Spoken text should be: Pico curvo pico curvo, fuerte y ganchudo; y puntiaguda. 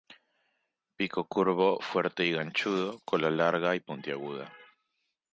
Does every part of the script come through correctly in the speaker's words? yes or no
no